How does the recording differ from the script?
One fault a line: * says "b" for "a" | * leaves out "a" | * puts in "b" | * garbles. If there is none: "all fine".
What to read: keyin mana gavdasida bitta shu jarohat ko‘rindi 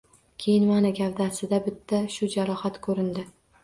all fine